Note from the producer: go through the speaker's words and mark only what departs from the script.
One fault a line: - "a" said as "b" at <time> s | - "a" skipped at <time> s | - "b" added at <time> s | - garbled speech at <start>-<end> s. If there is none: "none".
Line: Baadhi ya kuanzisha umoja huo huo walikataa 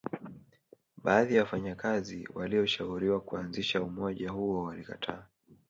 - "wafanyakazi walioshauriwa" added at 1.4 s
- "huo" skipped at 4.6 s